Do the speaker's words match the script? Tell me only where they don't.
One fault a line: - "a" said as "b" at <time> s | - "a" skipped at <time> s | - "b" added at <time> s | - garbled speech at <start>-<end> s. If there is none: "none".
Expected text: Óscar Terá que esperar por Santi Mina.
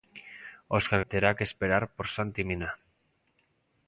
none